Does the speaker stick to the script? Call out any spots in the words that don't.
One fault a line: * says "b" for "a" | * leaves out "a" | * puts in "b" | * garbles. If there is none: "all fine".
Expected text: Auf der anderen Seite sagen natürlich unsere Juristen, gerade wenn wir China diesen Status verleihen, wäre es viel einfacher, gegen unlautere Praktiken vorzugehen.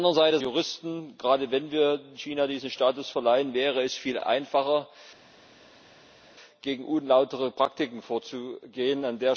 * leaves out "sagen natürlich unsere"